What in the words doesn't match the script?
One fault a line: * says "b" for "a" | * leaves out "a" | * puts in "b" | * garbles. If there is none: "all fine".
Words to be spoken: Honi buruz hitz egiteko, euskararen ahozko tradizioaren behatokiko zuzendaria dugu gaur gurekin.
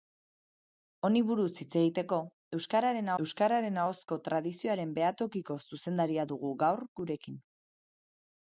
* puts in "euskararen"